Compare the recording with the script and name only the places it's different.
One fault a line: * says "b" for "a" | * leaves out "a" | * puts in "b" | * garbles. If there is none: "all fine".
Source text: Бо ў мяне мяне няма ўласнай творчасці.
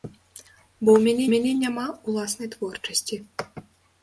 all fine